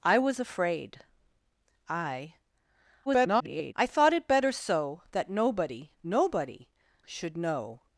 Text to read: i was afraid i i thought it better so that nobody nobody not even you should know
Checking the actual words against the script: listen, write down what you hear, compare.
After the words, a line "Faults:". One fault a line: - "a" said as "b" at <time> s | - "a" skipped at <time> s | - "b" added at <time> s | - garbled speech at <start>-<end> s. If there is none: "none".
i was afraid i [garbled] i thought it better so that nobody nobody should know
Faults:
- garbled speech at 3.1-3.7 s
- "not even you" skipped at 6.7 s